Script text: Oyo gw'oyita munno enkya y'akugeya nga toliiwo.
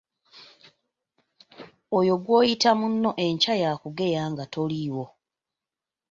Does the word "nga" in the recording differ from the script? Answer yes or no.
no